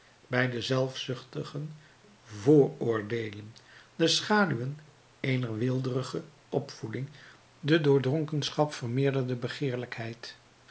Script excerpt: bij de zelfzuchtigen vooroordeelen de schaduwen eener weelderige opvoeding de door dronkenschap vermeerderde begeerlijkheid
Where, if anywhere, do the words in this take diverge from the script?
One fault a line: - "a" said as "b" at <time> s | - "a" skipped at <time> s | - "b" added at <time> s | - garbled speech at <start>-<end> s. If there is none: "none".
none